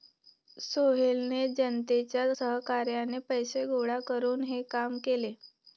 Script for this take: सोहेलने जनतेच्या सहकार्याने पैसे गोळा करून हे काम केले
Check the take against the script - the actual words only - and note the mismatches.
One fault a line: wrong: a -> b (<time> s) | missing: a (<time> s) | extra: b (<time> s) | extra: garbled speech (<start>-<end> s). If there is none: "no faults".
no faults